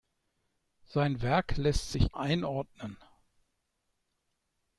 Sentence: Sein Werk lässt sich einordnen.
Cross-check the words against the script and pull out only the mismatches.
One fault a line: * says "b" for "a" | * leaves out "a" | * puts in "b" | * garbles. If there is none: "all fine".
all fine